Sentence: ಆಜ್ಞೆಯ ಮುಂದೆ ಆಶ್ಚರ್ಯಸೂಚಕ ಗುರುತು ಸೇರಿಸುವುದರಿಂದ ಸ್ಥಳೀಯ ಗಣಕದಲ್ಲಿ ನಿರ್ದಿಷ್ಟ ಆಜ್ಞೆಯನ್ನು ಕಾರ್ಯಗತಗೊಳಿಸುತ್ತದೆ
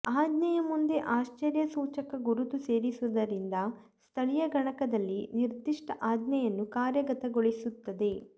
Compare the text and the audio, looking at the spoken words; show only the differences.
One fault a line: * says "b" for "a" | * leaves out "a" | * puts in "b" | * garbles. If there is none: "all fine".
all fine